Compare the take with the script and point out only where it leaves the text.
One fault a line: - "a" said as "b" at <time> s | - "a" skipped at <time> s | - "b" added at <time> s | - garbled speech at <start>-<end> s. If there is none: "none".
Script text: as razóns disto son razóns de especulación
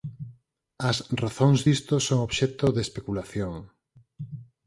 - "razóns" said as "obxecto" at 2.3 s